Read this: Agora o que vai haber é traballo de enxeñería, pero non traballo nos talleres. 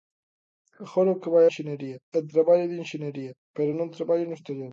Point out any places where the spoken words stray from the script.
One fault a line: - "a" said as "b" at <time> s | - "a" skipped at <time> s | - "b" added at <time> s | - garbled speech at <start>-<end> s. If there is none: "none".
- "haber" said as "enxeñería" at 1.5 s